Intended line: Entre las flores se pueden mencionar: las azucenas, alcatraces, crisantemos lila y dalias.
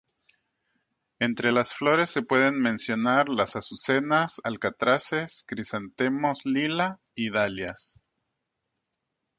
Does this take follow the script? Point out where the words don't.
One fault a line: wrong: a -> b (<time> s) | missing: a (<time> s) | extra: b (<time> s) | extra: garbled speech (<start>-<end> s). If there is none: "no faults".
no faults